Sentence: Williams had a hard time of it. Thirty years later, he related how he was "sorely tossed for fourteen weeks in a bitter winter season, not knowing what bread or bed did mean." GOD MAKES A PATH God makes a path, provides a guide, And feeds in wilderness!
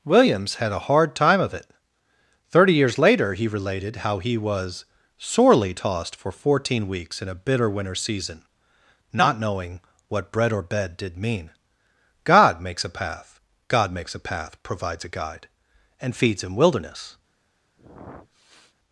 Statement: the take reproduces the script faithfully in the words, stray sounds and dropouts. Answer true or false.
false